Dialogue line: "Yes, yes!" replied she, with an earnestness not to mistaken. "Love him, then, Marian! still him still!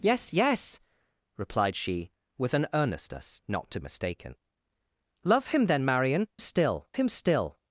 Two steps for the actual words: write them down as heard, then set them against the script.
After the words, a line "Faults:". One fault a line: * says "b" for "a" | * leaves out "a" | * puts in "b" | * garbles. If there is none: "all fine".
"Yes, yes!" replied she, with an earnestness not to mistaken. "Love him, then, Marian! still him still!
Faults:
all fine